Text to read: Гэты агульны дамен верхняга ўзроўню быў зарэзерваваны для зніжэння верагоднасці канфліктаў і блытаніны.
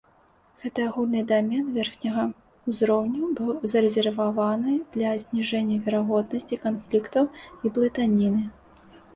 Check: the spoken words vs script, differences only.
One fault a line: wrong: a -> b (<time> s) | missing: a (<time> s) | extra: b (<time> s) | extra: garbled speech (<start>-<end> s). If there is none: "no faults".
no faults